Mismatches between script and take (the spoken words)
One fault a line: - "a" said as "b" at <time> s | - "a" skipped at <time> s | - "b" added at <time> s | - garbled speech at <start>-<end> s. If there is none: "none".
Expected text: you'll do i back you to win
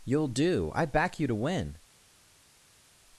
none